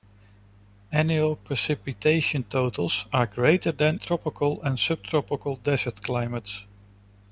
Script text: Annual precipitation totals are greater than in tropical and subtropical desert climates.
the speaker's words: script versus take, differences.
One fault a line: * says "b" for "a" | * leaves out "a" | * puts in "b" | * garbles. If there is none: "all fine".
* leaves out "in"